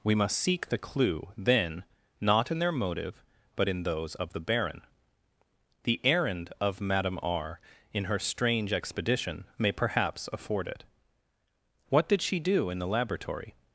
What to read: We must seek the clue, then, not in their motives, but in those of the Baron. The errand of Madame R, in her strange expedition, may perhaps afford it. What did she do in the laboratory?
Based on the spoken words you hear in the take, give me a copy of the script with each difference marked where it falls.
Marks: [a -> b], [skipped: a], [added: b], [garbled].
We must seek the clue, then, not in their [motives, -> motive] but in those of the Baron. The errand of Madame R, in her strange expedition, may perhaps afford it. What did she do in the laboratory?